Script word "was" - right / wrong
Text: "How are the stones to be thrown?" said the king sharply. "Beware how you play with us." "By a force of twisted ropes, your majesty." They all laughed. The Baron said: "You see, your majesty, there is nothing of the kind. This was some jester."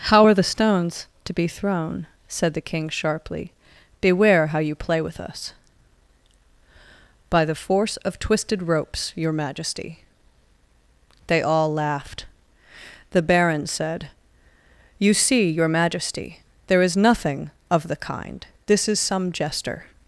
wrong